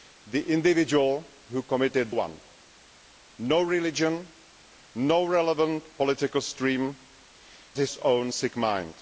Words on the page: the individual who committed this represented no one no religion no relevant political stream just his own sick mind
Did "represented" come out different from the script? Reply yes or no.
yes